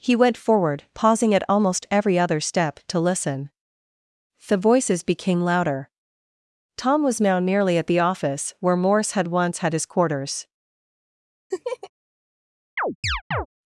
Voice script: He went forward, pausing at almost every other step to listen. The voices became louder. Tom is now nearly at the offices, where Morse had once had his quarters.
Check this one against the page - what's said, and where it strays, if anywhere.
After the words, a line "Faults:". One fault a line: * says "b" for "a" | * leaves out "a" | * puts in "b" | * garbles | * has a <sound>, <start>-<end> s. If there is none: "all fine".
He went forward, pausing at almost every other step to listen. The voices became louder. Tom was now nearly at the office, where Morse had once had his quarters.
Faults:
* says "was" for "is"
* says "office" for "offices"
* has a laugh, 11.5-11.9 s
* has a chirp, 12.8-13.5 s